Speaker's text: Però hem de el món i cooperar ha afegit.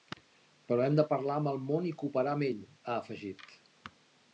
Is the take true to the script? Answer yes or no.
no